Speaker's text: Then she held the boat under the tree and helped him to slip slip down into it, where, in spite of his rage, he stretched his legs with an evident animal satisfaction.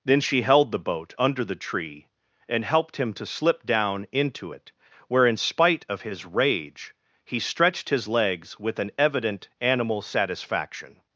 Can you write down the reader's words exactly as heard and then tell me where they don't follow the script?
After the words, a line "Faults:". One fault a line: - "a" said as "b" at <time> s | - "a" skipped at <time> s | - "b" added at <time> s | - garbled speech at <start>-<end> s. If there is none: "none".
Then she held the boat under the tree and helped him to slip down into it, where, in spite of his rage, he stretched his legs with an evident animal satisfaction.
Faults:
- "slip" skipped at 3.6 s